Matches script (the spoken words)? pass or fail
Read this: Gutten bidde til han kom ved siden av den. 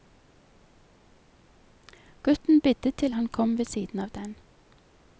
pass